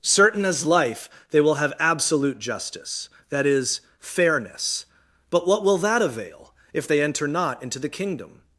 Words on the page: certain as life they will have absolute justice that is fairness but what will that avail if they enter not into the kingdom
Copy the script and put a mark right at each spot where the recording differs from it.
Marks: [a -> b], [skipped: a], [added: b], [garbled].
certain as life they will have absolute justice that is fairness but what will that avail if they enter not into the kingdom